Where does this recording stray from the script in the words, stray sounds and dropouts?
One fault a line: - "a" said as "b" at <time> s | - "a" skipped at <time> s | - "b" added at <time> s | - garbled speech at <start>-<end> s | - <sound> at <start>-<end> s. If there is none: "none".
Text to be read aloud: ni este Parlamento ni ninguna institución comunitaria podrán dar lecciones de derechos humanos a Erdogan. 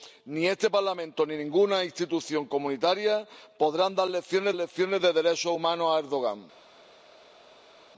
- "lecciones" added at 4.5 s